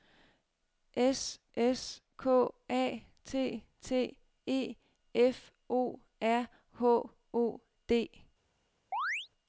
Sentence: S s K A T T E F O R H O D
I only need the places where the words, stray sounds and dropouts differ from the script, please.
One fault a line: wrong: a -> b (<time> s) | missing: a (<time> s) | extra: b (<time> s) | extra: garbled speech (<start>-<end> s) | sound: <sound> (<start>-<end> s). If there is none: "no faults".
sound: chirp (8.9-9.3 s)